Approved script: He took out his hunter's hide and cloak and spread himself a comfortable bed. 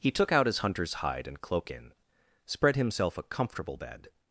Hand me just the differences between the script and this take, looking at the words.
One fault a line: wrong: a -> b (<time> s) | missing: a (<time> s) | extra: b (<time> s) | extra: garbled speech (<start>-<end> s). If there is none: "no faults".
wrong: and -> in (1.7 s)